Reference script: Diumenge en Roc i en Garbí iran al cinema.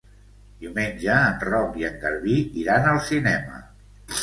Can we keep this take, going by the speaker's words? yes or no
yes